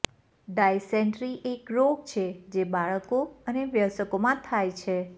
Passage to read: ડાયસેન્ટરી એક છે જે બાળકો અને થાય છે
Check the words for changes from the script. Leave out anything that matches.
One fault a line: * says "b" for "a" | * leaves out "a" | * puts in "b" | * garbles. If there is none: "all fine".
* puts in "રોગ"
* puts in "વયસ્કોમાં"